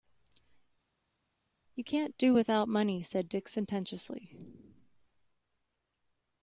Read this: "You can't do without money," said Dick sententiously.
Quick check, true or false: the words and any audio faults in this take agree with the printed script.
true